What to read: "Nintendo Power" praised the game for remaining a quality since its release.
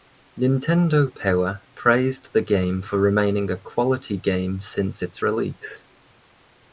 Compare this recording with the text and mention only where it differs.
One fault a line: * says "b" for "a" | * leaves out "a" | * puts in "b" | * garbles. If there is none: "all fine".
* puts in "game"